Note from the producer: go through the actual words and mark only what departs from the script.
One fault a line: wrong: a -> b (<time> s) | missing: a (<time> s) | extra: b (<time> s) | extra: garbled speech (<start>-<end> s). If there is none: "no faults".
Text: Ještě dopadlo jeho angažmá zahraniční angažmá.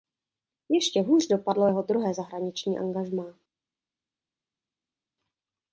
extra: hůř (1.0 s)
wrong: angažmá -> druhé (1.8 s)